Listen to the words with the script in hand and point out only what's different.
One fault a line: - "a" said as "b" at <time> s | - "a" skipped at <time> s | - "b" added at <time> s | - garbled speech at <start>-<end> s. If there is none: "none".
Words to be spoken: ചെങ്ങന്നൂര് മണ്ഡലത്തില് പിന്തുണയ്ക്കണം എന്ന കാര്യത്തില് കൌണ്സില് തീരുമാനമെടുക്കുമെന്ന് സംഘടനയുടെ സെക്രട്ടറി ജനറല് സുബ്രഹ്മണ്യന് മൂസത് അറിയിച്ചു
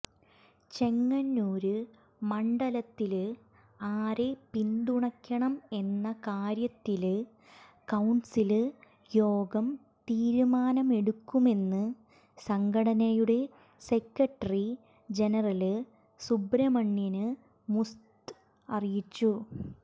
- "ആരെ" added at 3.9 s
- "യോഗം" added at 9.1 s